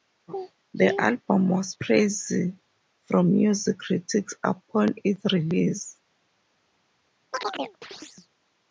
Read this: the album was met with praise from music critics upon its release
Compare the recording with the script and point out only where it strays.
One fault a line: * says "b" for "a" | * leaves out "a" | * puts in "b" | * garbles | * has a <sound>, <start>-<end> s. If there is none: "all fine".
* leaves out "met with"
* has a chirp, 7.3-8.3 s